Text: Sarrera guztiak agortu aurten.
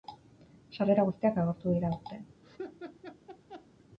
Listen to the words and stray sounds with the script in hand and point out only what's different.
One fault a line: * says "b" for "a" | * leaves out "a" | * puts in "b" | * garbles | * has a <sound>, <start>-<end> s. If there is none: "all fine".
* puts in "dira"
* has a laugh, 2.4-3.7 s